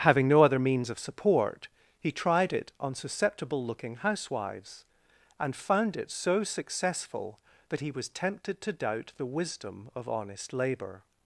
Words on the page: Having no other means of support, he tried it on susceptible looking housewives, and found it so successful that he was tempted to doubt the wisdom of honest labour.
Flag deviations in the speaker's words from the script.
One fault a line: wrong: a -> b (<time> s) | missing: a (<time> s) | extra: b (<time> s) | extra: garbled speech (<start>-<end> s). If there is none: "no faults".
no faults